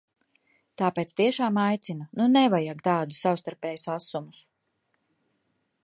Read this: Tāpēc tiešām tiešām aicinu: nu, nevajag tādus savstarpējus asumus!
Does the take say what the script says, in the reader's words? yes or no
no